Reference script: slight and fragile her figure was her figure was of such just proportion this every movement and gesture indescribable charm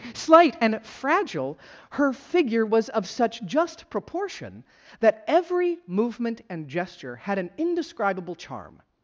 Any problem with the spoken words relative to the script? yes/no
yes